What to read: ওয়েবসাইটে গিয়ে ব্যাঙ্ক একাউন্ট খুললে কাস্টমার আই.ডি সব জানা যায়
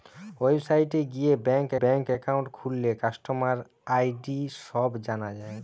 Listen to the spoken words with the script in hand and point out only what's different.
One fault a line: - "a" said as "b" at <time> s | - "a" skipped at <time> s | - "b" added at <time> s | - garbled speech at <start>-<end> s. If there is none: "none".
- "ব্যাঙ্ক" added at 1.8 s